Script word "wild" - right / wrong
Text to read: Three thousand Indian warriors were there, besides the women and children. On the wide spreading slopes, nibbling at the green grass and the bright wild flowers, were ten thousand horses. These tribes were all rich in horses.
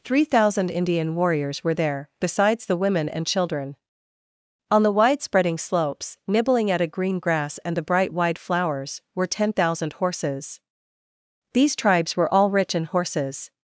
wrong